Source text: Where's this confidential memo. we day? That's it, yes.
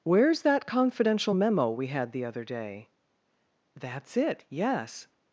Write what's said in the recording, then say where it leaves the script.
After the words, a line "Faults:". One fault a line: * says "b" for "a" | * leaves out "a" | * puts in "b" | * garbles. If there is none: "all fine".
Where's that confidential memo. we had the other day? That's it, yes.
Faults:
* says "that" for "this"
* puts in "had the other"